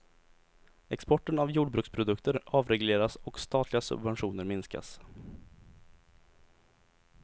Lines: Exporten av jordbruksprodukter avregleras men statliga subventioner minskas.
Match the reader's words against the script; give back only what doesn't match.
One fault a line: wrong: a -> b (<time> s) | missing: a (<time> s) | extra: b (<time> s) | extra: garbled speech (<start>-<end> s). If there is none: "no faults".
wrong: men -> och (3.1 s)